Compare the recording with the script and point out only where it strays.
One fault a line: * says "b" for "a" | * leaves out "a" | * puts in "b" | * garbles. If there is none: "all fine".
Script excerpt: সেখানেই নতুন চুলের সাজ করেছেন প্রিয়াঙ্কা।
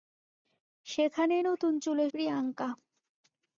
* leaves out "সাজ করেছেন"